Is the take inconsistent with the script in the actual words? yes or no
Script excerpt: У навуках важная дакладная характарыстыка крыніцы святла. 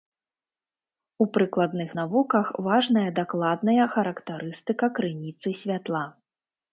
yes